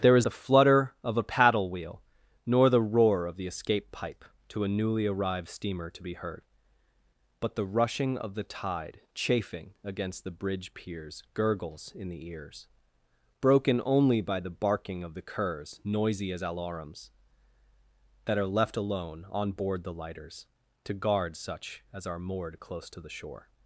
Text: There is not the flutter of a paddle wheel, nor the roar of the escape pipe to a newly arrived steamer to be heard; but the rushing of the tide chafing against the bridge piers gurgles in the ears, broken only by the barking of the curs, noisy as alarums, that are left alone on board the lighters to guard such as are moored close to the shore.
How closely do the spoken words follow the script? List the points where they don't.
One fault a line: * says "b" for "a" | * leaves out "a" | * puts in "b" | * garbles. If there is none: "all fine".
* leaves out "not"